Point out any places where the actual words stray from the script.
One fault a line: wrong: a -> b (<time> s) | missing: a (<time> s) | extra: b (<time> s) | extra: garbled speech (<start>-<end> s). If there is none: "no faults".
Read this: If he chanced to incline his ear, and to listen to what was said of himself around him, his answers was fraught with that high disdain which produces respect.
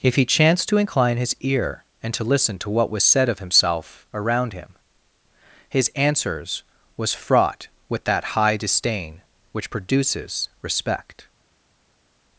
no faults